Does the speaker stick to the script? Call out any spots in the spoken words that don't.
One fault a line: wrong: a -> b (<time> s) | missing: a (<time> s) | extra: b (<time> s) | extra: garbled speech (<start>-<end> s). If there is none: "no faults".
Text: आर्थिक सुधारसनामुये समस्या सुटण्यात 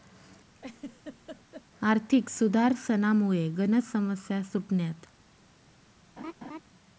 extra: गनच (3.5 s)